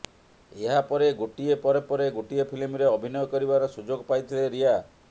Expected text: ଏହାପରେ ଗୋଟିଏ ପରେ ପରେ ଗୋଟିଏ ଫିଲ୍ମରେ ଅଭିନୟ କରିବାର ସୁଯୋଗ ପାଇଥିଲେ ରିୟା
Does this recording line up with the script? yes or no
yes